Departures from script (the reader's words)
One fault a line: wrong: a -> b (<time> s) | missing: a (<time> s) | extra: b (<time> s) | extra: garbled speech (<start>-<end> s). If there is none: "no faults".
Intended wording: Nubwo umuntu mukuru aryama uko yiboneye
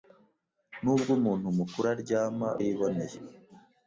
missing: uko (2.5 s)